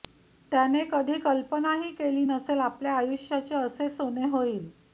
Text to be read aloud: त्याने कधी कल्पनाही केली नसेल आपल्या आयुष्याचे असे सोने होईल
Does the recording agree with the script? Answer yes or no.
yes